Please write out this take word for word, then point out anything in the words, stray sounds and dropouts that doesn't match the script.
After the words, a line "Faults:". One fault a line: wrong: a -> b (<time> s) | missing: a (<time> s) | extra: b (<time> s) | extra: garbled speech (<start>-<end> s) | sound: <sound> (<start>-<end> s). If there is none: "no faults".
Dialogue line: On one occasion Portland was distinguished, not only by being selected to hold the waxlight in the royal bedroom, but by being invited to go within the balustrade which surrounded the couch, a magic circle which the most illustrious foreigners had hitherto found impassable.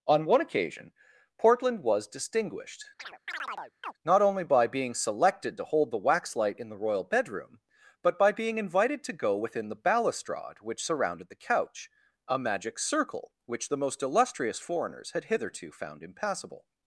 On one occasion Portland was distinguished, not only by being selected to hold the waxlight in the royal bedroom, but by being invited to go within the balustrade which surrounded the couch, a magic circle which the most illustrious foreigners had hitherto found impassable.
Faults:
sound: chirp (3.0-3.9 s)